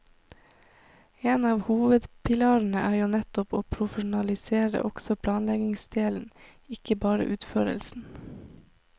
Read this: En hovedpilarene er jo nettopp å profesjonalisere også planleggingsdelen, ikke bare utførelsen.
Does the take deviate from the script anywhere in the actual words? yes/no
yes